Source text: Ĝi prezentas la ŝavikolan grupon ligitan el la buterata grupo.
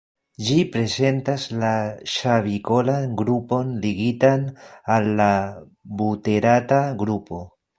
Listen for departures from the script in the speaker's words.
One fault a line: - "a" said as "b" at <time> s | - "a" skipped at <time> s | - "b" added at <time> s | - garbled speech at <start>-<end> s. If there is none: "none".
- "el" said as "al" at 5.0 s